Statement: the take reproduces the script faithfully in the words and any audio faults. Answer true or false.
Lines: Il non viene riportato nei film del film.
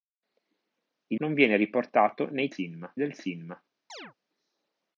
false